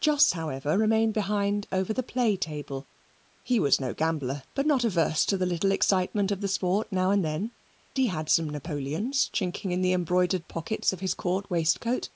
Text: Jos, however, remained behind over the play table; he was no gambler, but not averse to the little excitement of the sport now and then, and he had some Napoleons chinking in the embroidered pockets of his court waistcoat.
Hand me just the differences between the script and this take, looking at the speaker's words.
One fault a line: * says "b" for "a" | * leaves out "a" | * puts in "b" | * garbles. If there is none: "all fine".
* leaves out "and"